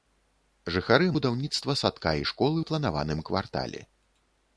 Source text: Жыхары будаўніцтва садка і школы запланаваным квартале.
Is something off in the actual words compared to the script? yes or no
no